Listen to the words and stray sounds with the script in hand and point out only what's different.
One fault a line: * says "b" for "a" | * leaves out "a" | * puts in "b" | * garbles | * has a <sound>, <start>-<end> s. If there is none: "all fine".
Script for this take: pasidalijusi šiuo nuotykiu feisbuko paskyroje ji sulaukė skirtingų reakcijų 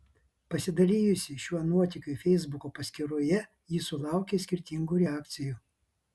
all fine